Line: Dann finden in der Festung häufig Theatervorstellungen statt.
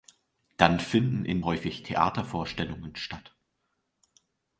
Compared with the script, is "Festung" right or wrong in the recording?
wrong